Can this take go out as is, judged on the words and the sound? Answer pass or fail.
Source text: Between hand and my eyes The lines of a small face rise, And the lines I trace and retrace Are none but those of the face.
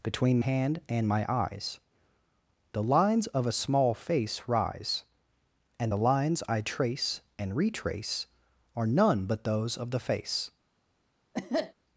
fail